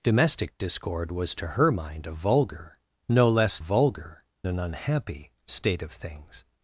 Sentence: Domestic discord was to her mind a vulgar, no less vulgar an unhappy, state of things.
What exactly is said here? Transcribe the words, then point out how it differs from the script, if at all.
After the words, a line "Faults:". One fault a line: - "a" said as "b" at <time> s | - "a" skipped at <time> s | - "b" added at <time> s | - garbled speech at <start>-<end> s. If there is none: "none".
Domestic discord was to her mind a vulgar, no less vulgar an unhappy, state of things.
Faults:
none